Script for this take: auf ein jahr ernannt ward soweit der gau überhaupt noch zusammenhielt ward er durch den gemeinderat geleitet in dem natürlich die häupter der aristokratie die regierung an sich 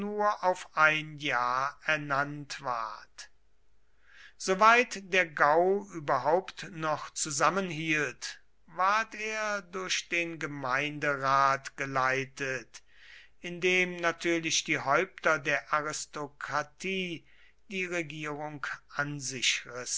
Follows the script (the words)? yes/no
yes